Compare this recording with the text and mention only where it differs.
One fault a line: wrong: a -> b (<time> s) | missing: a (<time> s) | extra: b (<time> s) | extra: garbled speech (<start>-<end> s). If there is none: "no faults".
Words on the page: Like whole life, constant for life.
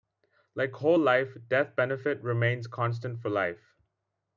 extra: death benefit remains (1.5 s)